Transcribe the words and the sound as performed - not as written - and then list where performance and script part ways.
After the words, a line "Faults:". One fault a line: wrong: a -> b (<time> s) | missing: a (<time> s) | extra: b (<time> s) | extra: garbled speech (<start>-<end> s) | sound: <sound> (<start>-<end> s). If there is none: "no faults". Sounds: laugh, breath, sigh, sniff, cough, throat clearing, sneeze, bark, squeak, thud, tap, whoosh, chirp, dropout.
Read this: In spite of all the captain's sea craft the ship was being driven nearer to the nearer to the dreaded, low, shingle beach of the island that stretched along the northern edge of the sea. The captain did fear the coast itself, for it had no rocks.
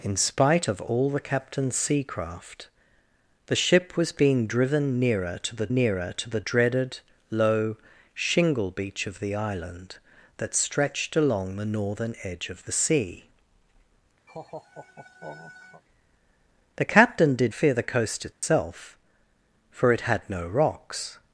In spite of all the captain's sea craft the ship was being driven nearer to the nearer to the dreaded, low, shingle beach of the island that stretched along the northern edge of the sea. The captain did fear the coast itself, for it had no rocks.
Faults:
sound: laugh (14.3-15.8 s)
sound: dropout (18.3-18.4 s)